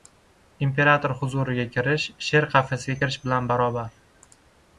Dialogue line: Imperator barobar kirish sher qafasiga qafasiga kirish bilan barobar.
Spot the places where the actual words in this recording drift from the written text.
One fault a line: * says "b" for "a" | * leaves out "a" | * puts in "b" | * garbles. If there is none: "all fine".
* says "huzuriga" for "barobar"
* leaves out "qafasiga"